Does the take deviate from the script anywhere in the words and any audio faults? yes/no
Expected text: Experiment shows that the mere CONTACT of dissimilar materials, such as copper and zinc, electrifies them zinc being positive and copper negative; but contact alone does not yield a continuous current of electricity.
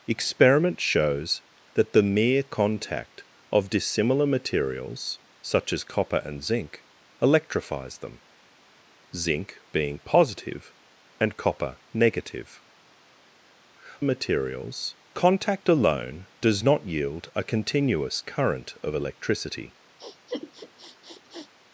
yes